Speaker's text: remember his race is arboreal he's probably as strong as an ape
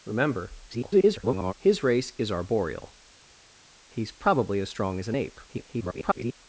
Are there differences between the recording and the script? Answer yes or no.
yes